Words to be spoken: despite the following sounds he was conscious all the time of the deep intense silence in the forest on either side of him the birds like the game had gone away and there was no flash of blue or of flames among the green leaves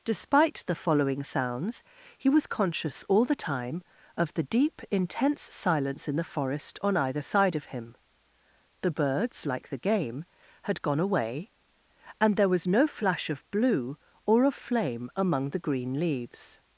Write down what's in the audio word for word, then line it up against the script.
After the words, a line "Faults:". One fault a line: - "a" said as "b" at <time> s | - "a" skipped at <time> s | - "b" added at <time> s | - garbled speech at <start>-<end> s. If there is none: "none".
despite the following sounds he was conscious all the time of the deep intense silence in the forest on either side of him the birds like the game had gone away and there was no flash of blue or of flame among the green leaves
Faults:
- "flames" said as "flame" at 14.5 s